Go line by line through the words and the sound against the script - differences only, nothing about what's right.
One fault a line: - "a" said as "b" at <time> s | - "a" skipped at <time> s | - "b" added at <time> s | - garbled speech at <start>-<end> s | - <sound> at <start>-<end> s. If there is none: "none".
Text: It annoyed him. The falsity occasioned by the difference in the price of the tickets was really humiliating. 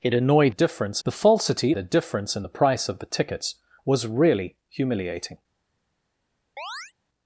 - "him" said as "difference" at 0.5 s
- "occasioned by" skipped at 1.7 s
- chirp at 6.6-6.9 s